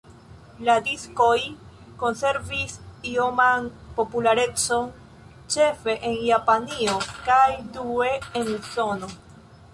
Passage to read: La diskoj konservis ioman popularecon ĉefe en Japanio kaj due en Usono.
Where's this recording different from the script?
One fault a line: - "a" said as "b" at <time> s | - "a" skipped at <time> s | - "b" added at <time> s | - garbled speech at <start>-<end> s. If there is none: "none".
none